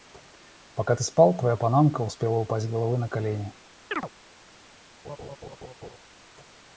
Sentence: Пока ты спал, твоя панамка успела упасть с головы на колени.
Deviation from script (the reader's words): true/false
false